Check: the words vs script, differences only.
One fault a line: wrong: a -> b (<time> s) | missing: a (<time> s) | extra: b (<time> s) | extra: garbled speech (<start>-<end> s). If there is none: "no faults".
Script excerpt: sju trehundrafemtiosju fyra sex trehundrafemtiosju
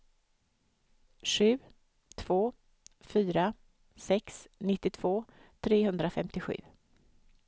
wrong: trehundrafemtiosju -> två (2.1 s)
extra: nittiotvå (4.6 s)